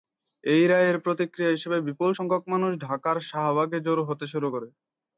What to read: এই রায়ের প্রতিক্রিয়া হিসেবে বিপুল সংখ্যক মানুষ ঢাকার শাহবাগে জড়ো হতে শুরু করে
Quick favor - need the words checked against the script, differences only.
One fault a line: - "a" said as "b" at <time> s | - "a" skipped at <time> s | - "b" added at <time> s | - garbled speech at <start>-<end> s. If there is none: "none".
none